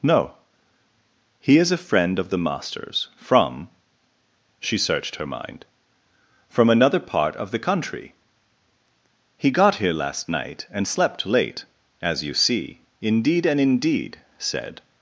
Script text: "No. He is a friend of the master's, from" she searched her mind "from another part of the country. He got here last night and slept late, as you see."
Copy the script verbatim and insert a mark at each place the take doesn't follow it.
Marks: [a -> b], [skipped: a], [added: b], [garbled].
"No. He is a friend of the master's, from" she searched her mind "from another part of the country. He got here last night and slept late, as you see." [added: Indeed and indeed said]